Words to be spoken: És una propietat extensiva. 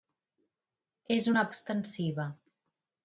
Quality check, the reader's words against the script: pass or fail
fail